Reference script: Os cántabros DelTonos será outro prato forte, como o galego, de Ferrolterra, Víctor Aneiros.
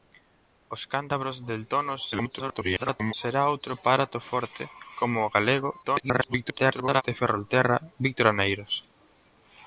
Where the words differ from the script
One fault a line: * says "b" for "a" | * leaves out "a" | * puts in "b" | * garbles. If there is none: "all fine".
* garbles
* garbles